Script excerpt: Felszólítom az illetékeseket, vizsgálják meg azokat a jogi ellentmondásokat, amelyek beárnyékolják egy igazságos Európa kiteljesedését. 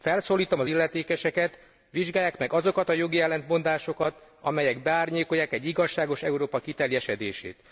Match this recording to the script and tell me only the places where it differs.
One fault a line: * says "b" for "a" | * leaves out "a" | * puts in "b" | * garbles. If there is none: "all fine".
all fine